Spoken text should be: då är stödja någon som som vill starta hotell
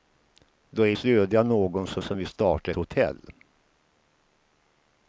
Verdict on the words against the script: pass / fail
pass